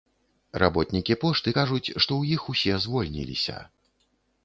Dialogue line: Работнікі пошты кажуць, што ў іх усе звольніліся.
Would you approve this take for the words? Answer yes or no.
yes